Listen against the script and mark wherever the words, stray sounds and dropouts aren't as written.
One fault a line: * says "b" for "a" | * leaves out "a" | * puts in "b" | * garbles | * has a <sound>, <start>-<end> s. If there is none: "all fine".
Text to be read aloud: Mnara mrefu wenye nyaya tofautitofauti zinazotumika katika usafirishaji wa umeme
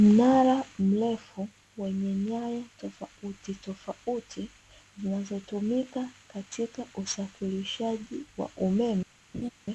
* has a laugh, 9.3-9.5 s